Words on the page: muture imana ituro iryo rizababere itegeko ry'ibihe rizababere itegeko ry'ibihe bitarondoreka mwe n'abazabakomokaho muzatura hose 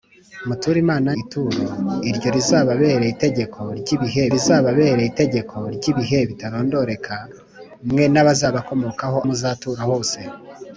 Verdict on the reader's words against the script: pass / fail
pass